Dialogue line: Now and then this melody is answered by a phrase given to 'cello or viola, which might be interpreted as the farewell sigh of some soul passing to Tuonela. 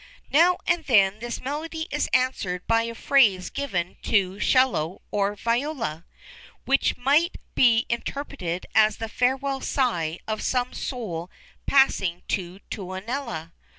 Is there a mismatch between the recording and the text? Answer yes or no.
no